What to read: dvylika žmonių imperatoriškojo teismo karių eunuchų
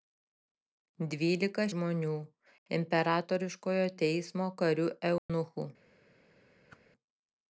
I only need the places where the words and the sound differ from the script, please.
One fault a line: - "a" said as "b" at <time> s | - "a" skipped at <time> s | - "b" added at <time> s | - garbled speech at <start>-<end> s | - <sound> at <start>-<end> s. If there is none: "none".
- dropout at 5.2-5.3 s
- whoosh at 6.7-6.8 s